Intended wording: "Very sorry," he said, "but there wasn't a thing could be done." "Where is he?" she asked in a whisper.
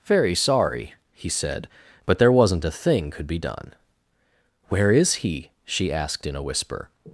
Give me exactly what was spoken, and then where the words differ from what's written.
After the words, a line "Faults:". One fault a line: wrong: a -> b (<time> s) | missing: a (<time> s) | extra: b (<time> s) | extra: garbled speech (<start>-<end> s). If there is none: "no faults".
"Very sorry," he said, "but there wasn't a thing could be done." "Where is he?" she asked in a whisper.
Faults:
no faults